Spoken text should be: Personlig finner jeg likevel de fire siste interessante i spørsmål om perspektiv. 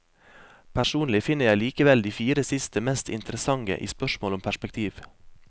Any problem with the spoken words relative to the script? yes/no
yes